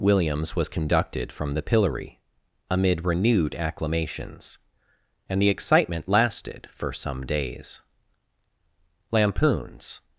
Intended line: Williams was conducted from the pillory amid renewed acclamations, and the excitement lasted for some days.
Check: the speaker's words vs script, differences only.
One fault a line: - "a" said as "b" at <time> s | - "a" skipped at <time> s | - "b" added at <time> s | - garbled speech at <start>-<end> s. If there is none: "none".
- "Lampoons" added at 9.1 s